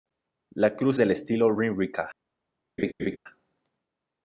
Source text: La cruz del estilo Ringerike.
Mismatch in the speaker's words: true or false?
false